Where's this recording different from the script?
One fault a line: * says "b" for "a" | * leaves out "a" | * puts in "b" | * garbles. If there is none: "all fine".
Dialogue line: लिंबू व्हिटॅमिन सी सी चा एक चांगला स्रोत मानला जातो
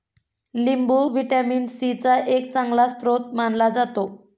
* leaves out "सी"